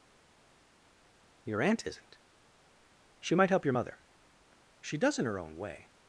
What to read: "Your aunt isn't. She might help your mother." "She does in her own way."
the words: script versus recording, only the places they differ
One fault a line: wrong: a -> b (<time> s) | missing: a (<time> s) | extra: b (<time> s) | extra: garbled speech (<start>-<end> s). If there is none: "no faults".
no faults